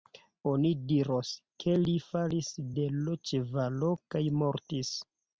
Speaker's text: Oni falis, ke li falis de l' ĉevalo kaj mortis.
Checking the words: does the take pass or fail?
fail